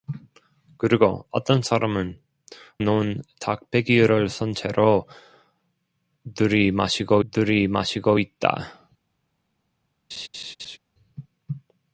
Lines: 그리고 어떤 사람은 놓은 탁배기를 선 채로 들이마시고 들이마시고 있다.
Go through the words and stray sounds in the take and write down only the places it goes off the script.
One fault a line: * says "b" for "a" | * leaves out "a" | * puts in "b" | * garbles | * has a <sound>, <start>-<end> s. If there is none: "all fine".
* has a laugh, 10.1-10.8 s